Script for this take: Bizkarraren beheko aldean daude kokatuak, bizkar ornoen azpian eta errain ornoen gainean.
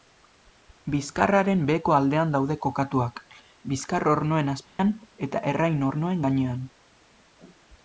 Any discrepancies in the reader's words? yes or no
no